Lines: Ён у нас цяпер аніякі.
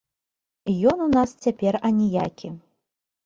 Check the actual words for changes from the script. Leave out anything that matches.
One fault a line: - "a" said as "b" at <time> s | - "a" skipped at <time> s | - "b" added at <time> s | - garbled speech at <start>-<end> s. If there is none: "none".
none